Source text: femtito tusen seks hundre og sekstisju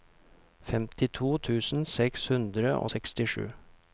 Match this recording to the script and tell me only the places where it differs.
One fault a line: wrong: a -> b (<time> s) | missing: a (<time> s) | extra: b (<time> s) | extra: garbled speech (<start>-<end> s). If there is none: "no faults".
no faults